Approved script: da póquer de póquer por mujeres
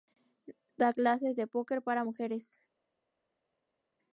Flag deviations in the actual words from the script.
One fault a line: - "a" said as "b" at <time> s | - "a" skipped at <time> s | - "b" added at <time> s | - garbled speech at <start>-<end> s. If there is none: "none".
- "póquer" said as "clases" at 0.9 s
- "por" said as "para" at 1.8 s